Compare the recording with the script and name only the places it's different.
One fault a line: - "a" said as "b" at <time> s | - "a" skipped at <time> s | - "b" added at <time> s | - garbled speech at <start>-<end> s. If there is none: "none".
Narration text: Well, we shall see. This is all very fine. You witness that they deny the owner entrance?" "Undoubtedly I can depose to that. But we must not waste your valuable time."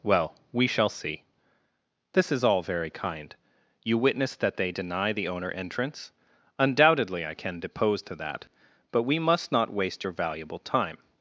- "fine" said as "kind" at 2.9 s